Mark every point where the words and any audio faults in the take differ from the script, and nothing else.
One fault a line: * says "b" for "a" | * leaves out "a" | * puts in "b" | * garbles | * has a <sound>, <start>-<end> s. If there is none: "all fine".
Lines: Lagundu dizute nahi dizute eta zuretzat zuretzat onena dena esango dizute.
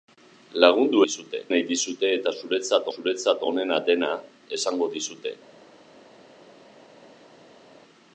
all fine